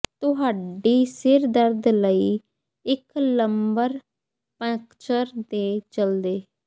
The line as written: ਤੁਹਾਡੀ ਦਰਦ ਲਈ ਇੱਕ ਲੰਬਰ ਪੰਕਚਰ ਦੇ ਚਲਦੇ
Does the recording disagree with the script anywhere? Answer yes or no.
yes